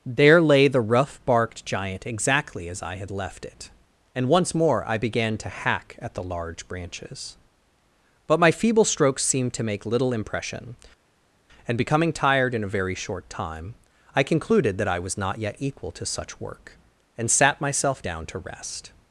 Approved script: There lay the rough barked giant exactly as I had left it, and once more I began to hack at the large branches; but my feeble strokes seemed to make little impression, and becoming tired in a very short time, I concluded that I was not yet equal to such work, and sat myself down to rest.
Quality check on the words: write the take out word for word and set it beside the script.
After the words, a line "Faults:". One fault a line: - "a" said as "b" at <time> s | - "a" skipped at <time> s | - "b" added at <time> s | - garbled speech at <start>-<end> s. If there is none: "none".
There lay the rough barked giant exactly as I had left it, and once more I began to hack at the large branches; but my feeble strokes seemed to make little impression, and becoming tired in a very short time, I concluded that I was not yet equal to such work, and sat myself down to rest.
Faults:
none